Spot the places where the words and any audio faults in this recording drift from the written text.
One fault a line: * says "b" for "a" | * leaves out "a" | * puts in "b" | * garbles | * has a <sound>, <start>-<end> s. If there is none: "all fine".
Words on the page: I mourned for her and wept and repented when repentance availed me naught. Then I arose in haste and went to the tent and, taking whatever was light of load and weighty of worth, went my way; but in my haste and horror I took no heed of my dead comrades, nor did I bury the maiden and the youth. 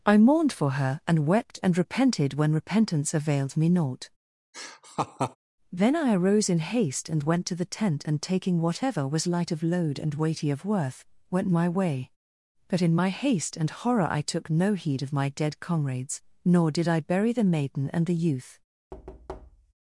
* has a laugh, 4.5-5.4 s
* has a thud, 18.9-19.7 s